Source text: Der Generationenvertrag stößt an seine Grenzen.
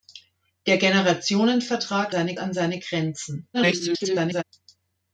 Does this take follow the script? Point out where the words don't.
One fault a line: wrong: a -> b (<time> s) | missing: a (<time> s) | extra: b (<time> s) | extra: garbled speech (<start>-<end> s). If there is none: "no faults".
wrong: stößt -> seine (2.1 s)
extra: garbled speech (3.5-4.4 s)